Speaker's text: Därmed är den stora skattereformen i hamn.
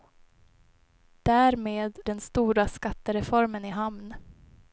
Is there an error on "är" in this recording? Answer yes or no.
yes